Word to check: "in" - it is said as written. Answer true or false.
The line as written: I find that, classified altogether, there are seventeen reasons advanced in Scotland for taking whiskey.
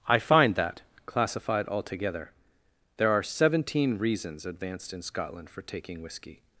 true